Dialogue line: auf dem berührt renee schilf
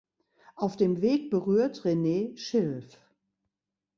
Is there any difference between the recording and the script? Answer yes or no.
yes